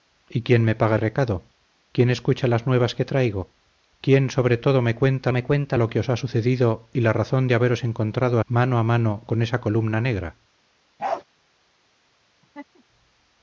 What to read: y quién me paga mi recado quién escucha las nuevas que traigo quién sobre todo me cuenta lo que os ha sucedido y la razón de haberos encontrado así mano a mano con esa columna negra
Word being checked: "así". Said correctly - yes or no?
no